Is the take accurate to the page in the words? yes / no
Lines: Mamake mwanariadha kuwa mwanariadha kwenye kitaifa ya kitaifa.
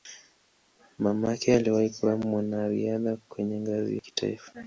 no